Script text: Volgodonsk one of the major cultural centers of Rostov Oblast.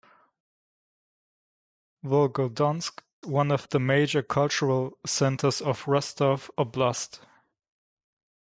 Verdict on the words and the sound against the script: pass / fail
pass